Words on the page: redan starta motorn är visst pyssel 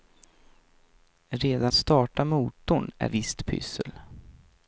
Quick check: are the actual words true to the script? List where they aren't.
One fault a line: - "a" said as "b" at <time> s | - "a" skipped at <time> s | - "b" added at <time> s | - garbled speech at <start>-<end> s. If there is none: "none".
none